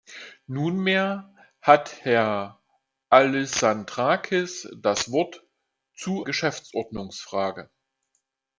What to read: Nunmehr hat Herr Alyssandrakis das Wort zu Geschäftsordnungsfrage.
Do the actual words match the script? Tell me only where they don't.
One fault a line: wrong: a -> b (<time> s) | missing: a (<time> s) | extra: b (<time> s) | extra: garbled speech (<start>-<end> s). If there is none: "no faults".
no faults